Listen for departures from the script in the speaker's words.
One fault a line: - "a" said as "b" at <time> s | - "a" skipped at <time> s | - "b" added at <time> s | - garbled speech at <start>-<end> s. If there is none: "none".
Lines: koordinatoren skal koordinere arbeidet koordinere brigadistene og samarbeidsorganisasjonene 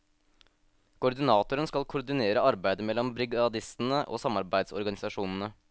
- "koordinere" said as "mellom" at 2.9 s